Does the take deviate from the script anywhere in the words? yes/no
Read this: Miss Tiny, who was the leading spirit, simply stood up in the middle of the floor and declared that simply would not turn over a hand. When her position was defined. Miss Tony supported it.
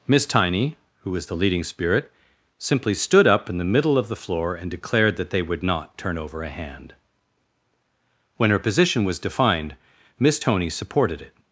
yes